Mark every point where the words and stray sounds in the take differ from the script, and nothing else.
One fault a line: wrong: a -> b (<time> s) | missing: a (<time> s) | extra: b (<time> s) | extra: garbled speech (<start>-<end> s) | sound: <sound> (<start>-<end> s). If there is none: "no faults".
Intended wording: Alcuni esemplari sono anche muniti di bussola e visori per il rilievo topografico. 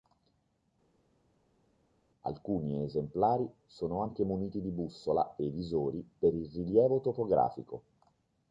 no faults